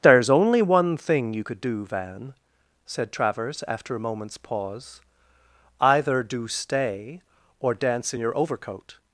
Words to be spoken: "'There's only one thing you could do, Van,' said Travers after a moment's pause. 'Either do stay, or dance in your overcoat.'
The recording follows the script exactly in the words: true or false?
true